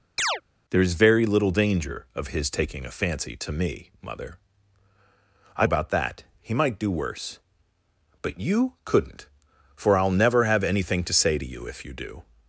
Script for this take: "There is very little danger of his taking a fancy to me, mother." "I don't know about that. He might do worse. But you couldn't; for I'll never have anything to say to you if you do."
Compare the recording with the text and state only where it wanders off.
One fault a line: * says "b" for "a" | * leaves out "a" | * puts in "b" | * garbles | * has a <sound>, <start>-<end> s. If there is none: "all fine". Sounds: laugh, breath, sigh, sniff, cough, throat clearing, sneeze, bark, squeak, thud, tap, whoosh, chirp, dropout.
* has a chirp, 0.2-0.4 s
* leaves out "don't know"